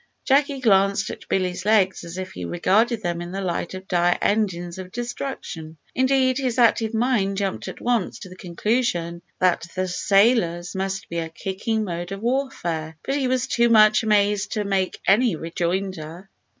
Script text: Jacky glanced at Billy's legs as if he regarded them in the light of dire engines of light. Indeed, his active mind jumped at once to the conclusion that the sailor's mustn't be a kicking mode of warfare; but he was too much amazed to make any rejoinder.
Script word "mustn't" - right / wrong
wrong